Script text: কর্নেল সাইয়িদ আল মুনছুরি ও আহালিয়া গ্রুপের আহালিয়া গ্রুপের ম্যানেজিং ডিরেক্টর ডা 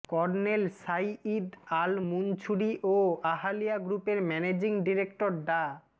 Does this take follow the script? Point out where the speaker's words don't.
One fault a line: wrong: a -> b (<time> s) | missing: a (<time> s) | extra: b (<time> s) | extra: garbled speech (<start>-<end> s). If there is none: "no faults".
missing: আহালিয়া গ্রুপের (4.2 s)